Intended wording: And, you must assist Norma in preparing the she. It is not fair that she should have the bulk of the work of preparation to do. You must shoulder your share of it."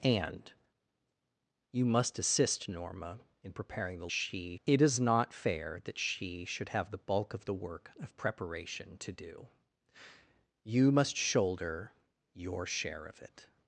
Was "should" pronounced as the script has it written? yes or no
yes